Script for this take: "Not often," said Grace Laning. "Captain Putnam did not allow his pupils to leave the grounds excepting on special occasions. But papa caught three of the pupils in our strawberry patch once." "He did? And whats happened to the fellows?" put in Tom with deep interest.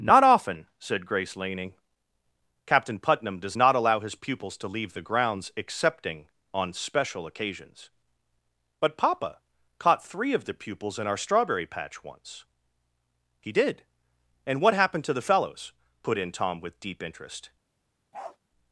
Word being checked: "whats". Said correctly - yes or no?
no